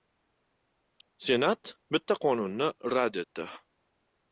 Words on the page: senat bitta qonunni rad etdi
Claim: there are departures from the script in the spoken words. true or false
false